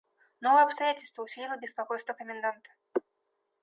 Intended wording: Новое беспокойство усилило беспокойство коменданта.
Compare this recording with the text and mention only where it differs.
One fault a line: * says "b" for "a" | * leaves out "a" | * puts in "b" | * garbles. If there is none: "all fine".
* says "обстоятельство" for "беспокойство"